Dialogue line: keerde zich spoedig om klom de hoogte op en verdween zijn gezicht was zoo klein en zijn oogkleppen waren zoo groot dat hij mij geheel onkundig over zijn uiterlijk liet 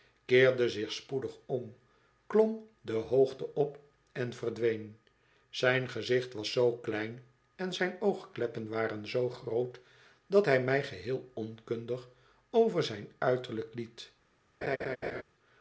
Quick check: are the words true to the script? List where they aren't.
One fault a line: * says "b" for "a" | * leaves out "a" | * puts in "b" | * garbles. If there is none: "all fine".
all fine